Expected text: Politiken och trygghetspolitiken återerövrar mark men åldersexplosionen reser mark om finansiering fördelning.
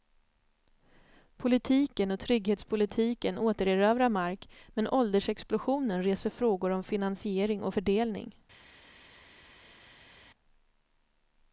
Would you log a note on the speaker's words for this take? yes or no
yes